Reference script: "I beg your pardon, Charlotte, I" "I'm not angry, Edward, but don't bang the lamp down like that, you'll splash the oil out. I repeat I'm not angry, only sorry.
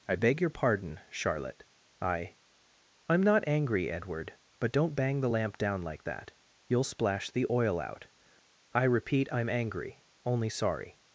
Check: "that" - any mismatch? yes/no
no